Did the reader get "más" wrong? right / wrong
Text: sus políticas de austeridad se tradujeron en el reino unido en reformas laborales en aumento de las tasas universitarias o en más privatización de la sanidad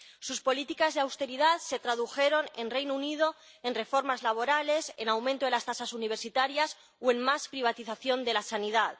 right